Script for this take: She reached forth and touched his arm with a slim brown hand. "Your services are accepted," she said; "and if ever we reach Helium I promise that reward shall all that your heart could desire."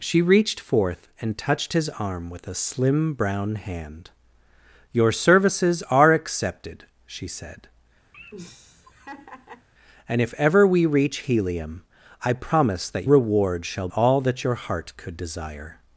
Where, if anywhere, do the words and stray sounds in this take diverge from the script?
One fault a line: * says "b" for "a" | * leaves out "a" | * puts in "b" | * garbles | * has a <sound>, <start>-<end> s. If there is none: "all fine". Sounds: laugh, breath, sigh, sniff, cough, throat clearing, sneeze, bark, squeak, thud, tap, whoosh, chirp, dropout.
* has a laugh, 8.1-9.7 s